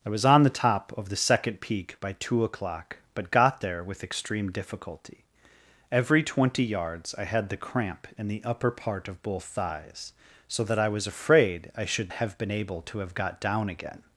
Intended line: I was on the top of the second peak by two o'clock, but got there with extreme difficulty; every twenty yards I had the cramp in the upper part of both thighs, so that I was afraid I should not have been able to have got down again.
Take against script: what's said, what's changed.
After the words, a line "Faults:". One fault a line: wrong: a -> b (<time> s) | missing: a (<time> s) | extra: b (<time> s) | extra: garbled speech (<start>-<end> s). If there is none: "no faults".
I was on the top of the second peak by two o'clock, but got there with extreme difficulty; every twenty yards I had the cramp in the upper part of both thighs, so that I was afraid I should have been able to have got down again.
Faults:
missing: not (12.1 s)